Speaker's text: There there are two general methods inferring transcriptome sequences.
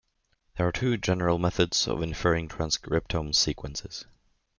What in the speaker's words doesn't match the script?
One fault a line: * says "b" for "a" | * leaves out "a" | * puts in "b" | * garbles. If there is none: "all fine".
* leaves out "there"
* puts in "of"